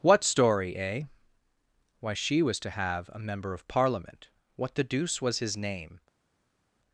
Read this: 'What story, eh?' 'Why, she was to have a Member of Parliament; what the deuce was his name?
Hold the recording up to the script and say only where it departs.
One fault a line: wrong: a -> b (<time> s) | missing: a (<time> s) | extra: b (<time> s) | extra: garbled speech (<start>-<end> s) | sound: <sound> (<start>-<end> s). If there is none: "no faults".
no faults